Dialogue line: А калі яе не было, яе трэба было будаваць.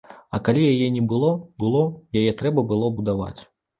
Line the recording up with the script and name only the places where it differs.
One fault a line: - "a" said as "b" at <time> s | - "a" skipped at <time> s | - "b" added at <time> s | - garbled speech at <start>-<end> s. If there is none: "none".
- "было" added at 1.6 s